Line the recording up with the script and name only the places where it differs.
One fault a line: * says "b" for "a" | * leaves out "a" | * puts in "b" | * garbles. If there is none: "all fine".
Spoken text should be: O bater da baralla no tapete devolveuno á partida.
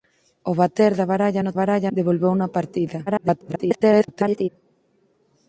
* says "baralla" for "tapete"
* garbles